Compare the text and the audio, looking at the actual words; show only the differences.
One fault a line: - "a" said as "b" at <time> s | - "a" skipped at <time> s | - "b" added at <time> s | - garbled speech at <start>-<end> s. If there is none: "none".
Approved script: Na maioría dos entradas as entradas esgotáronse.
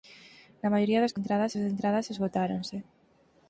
none